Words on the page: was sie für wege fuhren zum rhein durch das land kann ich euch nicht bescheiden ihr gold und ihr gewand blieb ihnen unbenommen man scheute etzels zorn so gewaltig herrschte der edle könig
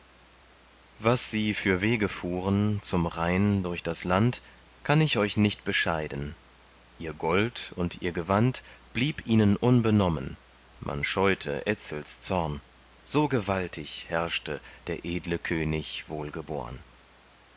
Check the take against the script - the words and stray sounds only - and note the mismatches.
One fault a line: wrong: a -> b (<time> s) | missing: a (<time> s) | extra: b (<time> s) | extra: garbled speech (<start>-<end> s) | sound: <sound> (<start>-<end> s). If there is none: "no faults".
no faults